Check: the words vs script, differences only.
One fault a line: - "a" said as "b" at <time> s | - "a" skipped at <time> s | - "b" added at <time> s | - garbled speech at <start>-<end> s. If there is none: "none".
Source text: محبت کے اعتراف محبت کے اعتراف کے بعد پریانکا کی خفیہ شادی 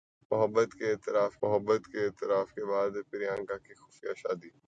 none